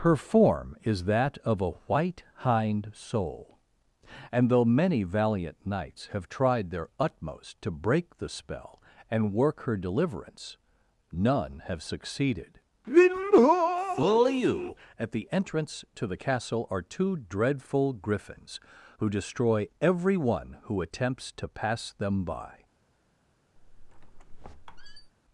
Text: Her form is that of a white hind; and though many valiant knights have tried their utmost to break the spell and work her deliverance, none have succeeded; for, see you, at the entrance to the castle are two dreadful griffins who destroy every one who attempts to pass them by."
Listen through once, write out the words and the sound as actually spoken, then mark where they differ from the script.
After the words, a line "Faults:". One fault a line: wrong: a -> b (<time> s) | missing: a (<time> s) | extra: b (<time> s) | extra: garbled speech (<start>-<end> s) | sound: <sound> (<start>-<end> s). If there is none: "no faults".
Her form is that of a white hind; soul and though many valiant knights have tried their utmost to break the spell and work her deliverance, none have succeeded; fool you, at the entrance to the castle are two dreadful griffins who destroy every one who attempts to pass them by."
Faults:
extra: soul (3.0 s)
wrong: for see -> fool (12.9 s)
sound: squeak (23.6-25.1 s)